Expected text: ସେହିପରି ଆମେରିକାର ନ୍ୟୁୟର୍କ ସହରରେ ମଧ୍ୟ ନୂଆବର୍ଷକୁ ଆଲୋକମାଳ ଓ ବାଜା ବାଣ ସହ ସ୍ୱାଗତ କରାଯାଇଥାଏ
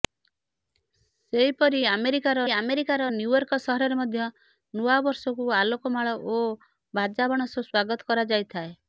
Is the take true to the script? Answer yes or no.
no